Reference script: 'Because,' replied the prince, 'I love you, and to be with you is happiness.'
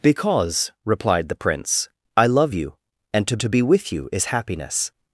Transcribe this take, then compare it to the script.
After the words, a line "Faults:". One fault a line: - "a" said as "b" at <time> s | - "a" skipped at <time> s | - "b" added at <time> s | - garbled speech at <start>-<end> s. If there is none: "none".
'Because,' replied the prince, 'I love you, and to to be with you is happiness.'
Faults:
- "to" added at 3.4 s